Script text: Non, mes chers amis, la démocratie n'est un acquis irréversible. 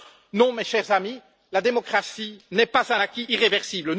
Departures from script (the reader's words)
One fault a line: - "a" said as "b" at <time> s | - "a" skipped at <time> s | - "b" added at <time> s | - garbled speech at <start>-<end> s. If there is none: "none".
- "pas" added at 2.6 s